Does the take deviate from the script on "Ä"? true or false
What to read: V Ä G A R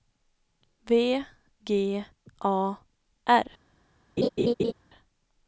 true